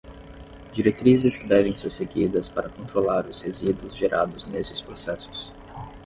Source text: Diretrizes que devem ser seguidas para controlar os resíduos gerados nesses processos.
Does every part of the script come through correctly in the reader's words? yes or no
yes